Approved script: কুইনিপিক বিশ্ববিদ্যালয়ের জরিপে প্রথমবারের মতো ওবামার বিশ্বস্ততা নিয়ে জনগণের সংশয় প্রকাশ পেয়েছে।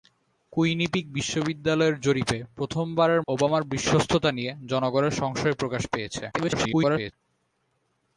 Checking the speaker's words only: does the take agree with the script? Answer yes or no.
no